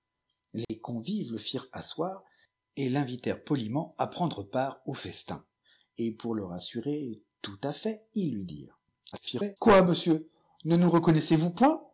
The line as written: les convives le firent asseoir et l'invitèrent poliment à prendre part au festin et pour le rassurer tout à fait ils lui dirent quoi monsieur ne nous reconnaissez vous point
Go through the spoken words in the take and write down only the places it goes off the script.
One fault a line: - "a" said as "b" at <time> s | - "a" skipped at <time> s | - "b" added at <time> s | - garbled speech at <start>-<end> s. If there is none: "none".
- garbled speech at 9.1-9.6 s